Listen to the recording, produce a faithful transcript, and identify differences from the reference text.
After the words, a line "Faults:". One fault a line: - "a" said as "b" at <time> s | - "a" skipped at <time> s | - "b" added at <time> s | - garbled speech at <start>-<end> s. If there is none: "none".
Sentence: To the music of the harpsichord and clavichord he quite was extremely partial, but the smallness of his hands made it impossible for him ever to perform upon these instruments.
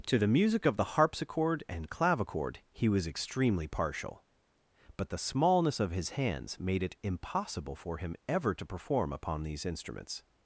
To the music of the harpsichord and clavichord he was extremely partial, but the smallness of his hands made it impossible for him ever to perform upon these instruments.
Faults:
- "quite" skipped at 2.9 s